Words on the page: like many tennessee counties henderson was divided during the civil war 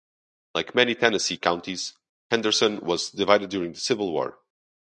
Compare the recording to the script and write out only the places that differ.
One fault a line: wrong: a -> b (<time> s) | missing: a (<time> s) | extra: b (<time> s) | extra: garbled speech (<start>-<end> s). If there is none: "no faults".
no faults